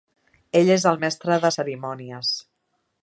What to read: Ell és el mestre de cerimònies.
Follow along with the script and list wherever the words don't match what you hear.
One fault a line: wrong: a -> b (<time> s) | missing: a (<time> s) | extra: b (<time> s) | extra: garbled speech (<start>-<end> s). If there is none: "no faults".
no faults